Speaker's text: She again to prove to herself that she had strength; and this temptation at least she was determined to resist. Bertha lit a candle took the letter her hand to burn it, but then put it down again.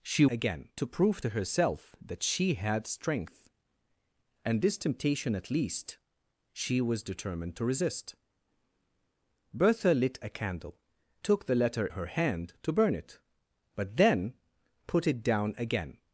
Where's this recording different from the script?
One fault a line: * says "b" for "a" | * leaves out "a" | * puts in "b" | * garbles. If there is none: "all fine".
all fine